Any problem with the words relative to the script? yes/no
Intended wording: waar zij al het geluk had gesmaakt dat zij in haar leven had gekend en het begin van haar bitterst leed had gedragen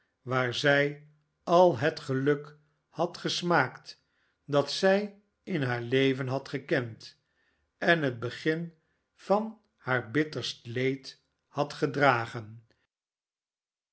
no